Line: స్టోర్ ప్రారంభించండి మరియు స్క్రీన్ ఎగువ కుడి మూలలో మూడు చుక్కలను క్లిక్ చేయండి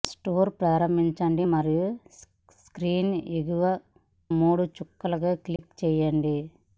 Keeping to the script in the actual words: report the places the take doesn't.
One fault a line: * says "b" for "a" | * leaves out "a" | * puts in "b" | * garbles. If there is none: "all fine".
* leaves out "కుడి మూలలో"